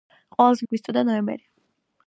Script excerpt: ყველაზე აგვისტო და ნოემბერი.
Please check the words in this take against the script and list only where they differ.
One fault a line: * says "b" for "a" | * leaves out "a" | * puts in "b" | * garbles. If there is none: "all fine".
all fine